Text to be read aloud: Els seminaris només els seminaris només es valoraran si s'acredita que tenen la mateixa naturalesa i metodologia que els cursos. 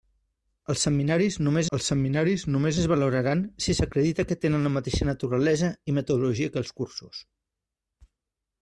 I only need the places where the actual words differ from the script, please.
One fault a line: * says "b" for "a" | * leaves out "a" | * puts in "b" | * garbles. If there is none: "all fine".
all fine